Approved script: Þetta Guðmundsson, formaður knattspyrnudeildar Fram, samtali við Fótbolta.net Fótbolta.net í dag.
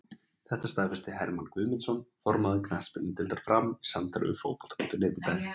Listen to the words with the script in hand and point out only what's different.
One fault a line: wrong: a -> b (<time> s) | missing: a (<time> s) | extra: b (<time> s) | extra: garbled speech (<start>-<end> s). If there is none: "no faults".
extra: staðfesti Hermann (0.7 s)
extra: í (3.8 s)
missing: Fótbolta.net (5.2 s)